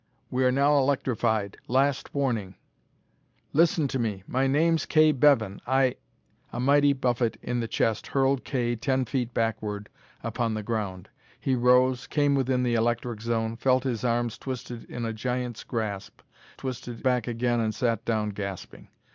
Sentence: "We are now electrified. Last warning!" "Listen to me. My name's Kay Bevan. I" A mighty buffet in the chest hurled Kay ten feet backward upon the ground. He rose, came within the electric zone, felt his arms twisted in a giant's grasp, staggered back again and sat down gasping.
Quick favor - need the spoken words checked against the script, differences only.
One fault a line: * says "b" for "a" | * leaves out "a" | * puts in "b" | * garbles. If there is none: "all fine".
* says "twisted" for "staggered"